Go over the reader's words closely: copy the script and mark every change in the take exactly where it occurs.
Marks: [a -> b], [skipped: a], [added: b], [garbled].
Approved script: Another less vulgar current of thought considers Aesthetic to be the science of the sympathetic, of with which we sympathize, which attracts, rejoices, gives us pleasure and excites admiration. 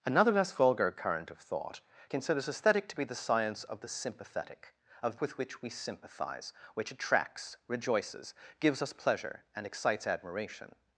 Another less vulgar current of thought considers Aesthetic to be the science of the sympathetic, of with which we sympathize, which attracts, rejoices, gives us pleasure and excites admiration.